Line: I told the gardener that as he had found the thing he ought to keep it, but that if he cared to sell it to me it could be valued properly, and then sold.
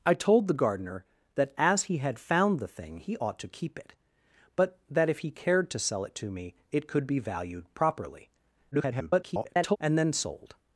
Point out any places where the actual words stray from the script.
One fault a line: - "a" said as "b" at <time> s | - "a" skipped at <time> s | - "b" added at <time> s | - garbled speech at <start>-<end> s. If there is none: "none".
- garbled speech at 8.7-9.8 s